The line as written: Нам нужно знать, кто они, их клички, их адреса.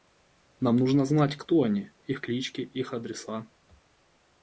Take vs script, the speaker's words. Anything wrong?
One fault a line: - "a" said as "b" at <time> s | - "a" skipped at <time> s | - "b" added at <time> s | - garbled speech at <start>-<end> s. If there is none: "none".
none